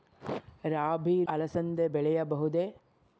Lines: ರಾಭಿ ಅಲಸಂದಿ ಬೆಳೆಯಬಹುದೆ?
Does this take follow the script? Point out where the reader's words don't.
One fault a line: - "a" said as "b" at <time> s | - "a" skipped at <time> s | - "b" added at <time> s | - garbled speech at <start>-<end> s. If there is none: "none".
none